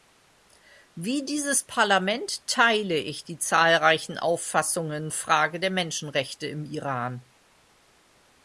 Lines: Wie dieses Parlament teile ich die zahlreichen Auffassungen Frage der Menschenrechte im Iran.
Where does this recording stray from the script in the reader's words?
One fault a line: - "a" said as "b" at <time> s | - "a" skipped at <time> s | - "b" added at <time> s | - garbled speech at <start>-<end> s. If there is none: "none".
none